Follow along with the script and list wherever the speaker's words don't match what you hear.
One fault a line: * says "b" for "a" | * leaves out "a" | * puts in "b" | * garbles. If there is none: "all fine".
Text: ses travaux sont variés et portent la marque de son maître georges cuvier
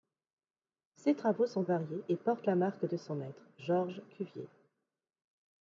all fine